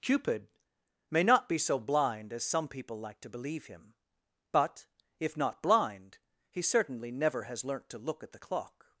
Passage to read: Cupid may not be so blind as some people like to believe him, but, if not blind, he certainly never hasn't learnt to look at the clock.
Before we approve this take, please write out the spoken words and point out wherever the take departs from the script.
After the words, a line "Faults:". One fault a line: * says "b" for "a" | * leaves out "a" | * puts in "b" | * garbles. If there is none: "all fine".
Cupid may not be so blind as some people like to believe him, but, if not blind, he certainly never has learnt to look at the clock.
Faults:
* says "has" for "hasn't"